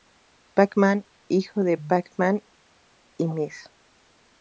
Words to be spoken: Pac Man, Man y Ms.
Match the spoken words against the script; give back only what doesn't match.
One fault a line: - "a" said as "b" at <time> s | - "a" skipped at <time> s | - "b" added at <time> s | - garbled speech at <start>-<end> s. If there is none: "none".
- "hijo de Pac" added at 1.3 s